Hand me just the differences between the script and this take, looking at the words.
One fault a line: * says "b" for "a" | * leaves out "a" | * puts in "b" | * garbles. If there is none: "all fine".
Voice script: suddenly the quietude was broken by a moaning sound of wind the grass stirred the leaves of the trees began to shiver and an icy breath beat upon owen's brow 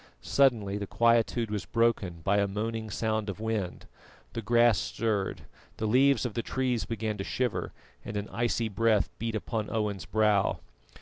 all fine